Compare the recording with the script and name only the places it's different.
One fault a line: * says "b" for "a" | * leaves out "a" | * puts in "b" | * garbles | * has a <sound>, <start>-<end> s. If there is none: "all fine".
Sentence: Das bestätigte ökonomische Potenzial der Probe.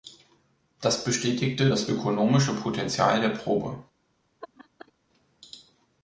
* puts in "das"
* has a laugh, 4.4-4.9 s